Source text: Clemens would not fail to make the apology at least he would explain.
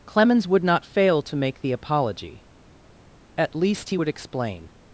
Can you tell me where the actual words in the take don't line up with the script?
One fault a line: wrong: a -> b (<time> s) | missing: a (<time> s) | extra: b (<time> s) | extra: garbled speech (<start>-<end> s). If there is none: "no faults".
no faults